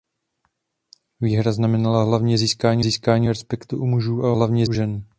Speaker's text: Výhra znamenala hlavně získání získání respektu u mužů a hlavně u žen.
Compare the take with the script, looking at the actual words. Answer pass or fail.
pass